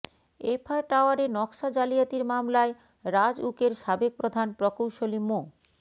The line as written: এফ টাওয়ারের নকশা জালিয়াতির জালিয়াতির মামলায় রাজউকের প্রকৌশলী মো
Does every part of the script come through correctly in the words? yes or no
no